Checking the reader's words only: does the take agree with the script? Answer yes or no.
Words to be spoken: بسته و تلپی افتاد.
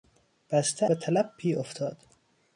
yes